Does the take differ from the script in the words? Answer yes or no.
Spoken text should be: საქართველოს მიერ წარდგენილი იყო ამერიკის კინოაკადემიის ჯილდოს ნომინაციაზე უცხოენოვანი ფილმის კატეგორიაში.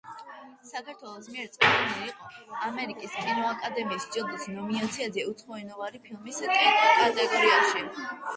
no